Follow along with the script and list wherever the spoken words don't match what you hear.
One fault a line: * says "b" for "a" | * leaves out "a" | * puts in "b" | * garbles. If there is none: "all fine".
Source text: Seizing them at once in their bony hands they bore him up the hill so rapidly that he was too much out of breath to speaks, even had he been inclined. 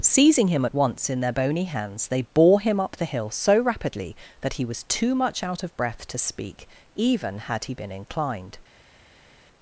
* says "him" for "them"
* says "speak" for "speaks"